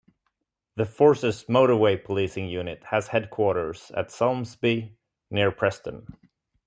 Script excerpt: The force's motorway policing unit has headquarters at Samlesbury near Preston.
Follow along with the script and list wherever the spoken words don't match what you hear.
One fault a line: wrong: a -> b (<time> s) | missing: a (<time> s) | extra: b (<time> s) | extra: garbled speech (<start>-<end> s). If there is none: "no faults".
no faults